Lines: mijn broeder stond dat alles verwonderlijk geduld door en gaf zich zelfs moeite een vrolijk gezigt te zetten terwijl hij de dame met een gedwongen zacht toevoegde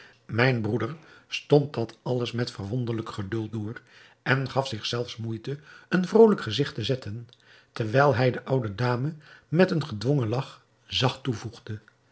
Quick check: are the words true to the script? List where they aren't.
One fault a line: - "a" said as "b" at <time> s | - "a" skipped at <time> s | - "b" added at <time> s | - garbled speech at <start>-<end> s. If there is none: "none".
- "met" added at 2.3 s
- "oude" added at 8.4 s
- "lach" added at 10.3 s